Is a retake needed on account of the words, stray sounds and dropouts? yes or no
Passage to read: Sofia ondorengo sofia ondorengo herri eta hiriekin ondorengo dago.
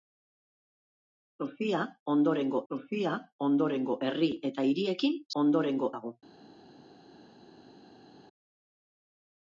no